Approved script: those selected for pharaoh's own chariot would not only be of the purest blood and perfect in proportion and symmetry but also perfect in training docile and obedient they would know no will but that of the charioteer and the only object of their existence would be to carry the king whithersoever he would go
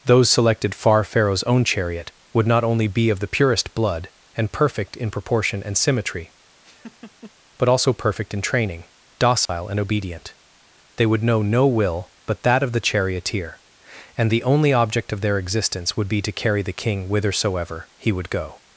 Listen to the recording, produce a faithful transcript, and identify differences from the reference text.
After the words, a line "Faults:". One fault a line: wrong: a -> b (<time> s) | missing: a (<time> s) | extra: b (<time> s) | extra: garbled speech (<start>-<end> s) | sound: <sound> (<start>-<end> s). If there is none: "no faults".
those selected far pharaoh's own chariot would not only be of the purest blood and perfect in proportion and symmetry but also perfect in training docile and obedient they would know no will but that of the charioteer and the only object of their existence would be to carry the king whithersoever he would go
Faults:
wrong: for -> far (0.7 s)
sound: laugh (6.6-7.3 s)
sound: dropout (9.5-9.5 s)